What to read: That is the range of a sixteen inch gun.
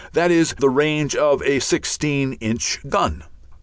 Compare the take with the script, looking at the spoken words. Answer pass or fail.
pass